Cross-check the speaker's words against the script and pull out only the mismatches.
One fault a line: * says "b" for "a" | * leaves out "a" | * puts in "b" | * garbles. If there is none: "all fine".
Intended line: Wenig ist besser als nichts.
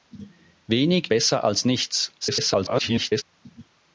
* leaves out "ist"
* garbles